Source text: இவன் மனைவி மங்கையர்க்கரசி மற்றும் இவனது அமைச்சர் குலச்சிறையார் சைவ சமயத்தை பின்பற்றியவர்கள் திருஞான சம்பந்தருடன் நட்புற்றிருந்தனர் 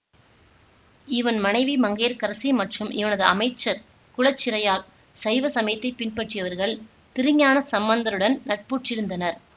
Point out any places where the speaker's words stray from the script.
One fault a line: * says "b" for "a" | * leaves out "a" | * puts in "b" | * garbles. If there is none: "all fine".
all fine